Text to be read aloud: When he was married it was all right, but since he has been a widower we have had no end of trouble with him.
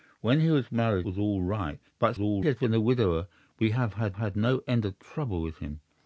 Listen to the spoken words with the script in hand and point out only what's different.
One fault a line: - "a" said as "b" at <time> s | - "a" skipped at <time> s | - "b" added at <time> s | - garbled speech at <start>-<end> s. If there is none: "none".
- "it" skipped at 1.1 s
- "since" said as "all" at 2.2 s
- "had" added at 4.1 s